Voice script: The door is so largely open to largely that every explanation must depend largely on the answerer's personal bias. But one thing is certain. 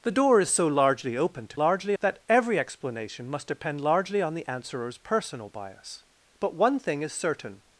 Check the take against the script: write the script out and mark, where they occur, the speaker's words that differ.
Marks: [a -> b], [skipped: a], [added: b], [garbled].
The door is so largely open to largely that every explanation must depend largely on the answerer's personal bias. But one thing is certain.